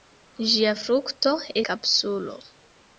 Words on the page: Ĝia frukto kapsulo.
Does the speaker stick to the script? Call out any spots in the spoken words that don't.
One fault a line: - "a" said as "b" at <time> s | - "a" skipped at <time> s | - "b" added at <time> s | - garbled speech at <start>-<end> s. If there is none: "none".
none